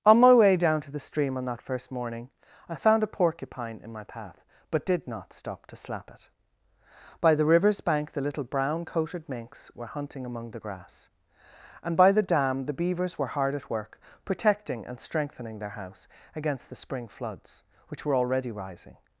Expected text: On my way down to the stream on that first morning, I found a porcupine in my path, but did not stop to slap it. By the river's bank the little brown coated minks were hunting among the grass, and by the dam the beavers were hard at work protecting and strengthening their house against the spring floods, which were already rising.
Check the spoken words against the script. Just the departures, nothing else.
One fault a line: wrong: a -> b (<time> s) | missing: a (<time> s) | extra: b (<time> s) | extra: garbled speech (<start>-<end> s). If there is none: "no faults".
no faults